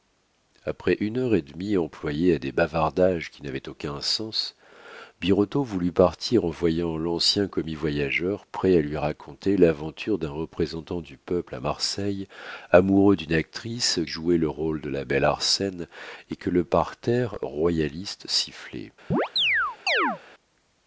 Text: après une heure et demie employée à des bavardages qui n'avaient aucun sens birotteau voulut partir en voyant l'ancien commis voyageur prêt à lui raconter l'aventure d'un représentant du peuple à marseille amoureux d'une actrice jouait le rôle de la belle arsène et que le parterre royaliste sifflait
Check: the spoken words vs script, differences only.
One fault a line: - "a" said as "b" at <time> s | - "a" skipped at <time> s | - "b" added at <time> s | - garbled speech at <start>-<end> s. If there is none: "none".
none